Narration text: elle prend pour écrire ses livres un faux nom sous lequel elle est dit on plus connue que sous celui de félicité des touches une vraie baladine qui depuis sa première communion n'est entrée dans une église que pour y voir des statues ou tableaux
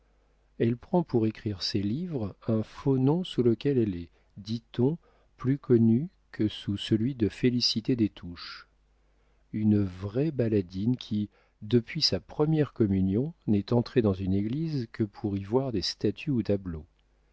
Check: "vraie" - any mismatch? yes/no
no